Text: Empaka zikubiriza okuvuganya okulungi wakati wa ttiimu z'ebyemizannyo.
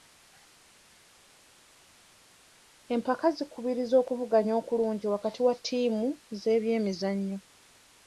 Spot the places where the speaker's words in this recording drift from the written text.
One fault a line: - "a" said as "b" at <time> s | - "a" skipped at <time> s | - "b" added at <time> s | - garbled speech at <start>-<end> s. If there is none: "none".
none